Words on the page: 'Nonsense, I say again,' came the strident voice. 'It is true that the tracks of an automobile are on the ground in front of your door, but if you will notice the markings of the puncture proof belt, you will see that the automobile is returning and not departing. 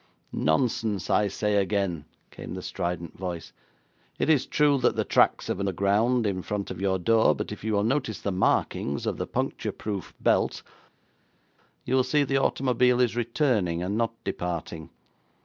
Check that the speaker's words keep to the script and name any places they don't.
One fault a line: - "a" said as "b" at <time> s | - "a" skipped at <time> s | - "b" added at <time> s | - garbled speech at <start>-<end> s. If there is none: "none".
- "automobile are on" skipped at 5.7 s
- "that" skipped at 12.2 s